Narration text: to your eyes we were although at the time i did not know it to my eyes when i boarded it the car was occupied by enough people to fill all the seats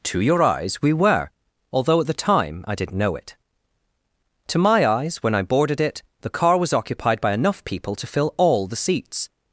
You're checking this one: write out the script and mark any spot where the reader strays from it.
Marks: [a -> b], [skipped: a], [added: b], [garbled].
to your eyes we were although at the time i did [skipped: not] know it to my eyes when i boarded it the car was occupied by enough people to fill all the seats